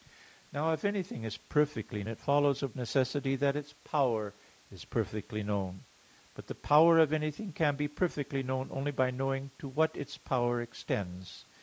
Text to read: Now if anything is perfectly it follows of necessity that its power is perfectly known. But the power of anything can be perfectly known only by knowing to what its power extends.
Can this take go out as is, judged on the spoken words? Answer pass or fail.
pass